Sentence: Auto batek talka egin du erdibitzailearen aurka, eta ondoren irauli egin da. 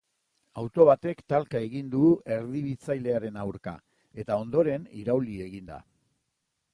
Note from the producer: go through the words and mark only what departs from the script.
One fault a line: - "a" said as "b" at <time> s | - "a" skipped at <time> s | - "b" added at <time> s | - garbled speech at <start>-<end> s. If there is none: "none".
none